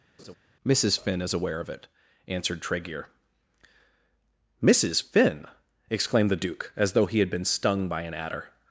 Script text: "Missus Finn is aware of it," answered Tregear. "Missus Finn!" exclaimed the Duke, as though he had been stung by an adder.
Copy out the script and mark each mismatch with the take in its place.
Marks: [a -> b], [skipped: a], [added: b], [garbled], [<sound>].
[laugh] "Missus Finn is aware of it," answered Tregear. "Missus Finn!" exclaimed the Duke, as though he had been stung by an adder.